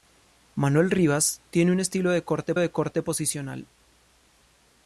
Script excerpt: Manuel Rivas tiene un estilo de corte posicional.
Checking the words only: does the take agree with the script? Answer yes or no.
no